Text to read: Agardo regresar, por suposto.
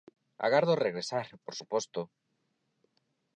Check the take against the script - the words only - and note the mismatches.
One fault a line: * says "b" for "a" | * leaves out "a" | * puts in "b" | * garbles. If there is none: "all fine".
all fine